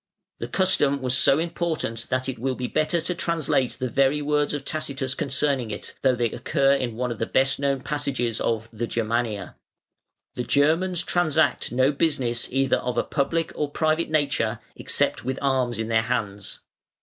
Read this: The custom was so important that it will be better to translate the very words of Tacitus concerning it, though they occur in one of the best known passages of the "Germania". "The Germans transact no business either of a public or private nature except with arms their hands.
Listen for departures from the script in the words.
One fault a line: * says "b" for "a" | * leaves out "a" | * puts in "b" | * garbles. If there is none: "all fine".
* puts in "in"